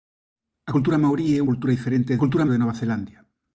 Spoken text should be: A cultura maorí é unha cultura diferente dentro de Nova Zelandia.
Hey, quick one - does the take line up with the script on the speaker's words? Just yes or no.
no